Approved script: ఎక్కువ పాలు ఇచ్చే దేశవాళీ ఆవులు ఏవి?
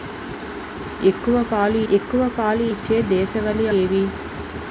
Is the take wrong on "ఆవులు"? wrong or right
wrong